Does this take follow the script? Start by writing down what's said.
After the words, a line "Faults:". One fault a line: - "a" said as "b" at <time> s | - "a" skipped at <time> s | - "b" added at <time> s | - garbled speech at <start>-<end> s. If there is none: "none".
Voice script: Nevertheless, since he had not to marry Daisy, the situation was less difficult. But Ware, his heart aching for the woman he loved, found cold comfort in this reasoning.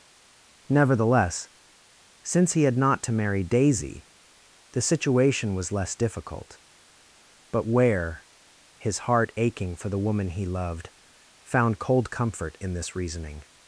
Nevertheless, since he had not to marry Daisy, the situation was less difficult. But Ware, his heart aching for the woman he loved, found cold comfort in this reasoning.
Faults:
none